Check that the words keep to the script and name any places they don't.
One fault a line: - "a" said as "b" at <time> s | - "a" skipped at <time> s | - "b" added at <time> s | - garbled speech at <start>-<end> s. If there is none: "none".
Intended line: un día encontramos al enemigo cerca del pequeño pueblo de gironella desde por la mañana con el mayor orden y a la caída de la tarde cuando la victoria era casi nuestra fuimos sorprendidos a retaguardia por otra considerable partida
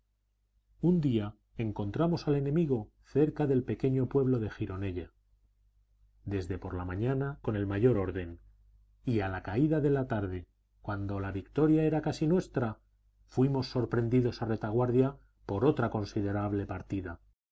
none